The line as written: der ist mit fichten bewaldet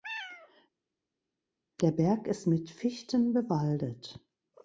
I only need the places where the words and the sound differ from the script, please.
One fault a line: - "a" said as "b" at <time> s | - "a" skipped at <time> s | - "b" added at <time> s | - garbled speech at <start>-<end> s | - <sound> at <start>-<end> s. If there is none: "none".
- "berg" added at 1.9 s